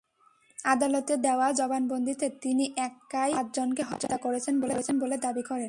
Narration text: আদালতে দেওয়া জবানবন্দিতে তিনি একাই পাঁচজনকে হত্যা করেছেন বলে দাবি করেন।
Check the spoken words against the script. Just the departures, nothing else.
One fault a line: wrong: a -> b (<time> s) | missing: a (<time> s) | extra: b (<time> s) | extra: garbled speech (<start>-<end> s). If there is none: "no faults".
no faults